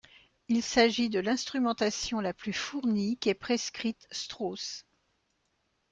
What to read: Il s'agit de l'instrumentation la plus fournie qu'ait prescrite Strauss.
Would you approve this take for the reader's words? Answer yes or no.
yes